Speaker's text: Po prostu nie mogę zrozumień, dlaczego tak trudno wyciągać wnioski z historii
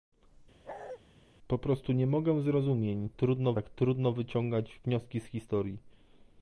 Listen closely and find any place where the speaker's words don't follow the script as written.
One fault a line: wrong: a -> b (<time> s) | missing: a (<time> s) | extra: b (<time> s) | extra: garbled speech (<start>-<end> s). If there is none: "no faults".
wrong: dlaczego -> trudno (3.1 s)